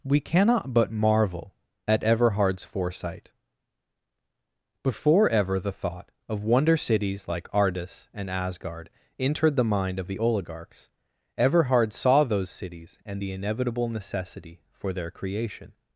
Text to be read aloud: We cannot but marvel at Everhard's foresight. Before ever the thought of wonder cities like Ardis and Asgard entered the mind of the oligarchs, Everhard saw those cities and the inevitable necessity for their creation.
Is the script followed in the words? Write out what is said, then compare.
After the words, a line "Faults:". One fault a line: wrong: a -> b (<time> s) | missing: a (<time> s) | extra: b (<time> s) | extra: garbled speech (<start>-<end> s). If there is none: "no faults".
We cannot but marvel at Everhard's foresight. Before ever the thought of wonder cities like Ardis and Asgard entered the mind of the oligarchs, Everhard saw those cities and the inevitable necessity for their creation.
Faults:
no faults